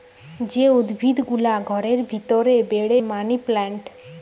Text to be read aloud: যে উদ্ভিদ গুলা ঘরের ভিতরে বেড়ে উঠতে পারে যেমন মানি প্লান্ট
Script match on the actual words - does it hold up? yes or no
no